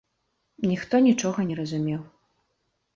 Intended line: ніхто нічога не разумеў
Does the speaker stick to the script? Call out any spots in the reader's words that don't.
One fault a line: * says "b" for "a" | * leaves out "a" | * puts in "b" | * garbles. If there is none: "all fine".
all fine